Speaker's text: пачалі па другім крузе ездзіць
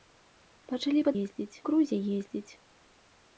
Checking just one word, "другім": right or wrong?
wrong